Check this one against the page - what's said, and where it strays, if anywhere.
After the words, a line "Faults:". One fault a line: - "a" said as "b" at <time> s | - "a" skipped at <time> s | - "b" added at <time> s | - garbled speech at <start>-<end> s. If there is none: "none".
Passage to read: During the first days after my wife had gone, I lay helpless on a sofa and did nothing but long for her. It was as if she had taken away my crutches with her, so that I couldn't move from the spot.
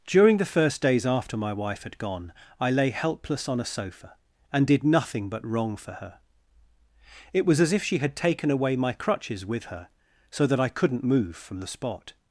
During the first days after my wife had gone, I lay helpless on a sofa and did nothing but wrong for her. It was as if she had taken away my crutches with her, so that I couldn't move from the spot.
Faults:
- "long" said as "wrong" at 5.5 s